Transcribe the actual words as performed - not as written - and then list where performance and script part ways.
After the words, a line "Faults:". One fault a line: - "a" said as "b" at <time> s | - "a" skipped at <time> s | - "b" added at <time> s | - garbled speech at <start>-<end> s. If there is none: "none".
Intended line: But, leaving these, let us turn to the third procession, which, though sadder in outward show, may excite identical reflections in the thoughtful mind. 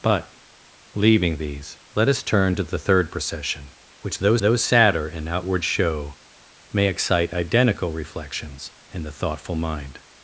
But, leaving these, let us turn to the third procession, which, though though sadder in outward show, may excite identical reflections in the thoughtful mind.
Faults:
- "though" added at 4.4 s